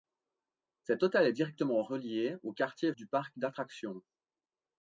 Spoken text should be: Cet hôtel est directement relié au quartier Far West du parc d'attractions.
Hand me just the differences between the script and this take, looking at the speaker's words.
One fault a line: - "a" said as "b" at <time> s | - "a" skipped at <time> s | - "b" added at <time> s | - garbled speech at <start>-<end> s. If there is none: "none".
- "Far West" skipped at 2.9 s